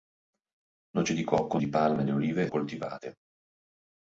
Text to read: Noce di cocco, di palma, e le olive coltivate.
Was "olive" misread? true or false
false